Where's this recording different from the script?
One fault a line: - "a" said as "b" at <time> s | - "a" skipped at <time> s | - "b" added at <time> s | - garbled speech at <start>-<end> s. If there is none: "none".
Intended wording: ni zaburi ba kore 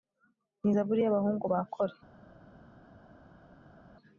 - "y'abahungu" added at 1.0 s